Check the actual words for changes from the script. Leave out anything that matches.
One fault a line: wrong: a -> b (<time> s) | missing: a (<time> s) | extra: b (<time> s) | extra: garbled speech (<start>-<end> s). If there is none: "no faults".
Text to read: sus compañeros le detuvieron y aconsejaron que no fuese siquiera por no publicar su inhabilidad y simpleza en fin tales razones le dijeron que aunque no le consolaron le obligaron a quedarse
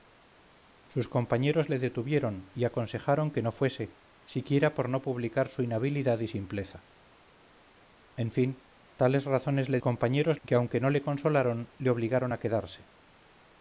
wrong: dijeron -> compañeros (9.8 s)